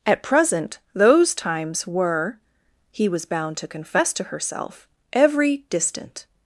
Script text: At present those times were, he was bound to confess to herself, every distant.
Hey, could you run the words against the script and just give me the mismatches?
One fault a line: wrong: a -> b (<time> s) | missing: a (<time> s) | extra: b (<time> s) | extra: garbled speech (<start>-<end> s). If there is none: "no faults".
no faults